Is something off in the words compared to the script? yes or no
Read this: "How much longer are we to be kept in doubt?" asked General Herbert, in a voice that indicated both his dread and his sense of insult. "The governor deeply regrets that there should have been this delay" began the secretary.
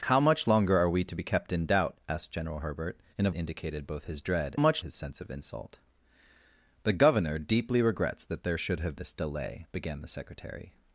yes